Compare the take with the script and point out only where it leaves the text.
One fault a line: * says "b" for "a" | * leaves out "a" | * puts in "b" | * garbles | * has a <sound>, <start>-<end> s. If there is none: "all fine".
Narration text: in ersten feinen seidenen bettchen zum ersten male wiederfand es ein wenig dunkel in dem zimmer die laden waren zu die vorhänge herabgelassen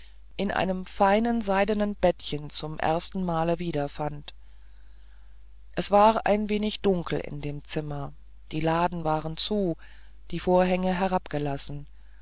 * says "einem" for "ersten"
* puts in "war"